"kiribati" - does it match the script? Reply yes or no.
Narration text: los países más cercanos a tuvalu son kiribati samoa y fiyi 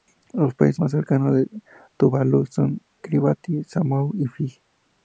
yes